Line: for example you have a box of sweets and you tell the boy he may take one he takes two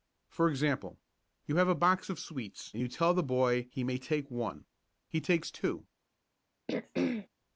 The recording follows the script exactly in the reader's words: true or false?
true